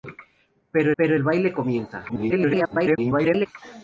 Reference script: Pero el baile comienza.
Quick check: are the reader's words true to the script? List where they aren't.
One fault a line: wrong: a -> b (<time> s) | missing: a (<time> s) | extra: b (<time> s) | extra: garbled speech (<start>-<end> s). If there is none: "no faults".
extra: pero (1.0 s)
extra: garbled speech (2.1-3.5 s)